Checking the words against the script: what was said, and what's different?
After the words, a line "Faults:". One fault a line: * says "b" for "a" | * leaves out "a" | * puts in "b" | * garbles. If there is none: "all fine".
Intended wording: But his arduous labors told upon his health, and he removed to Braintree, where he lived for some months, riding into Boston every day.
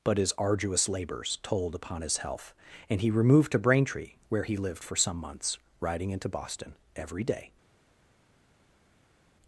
But his arduous labors told upon his health, and he removed to Braintree, where he lived for some months, riding into Boston every day.
Faults:
all fine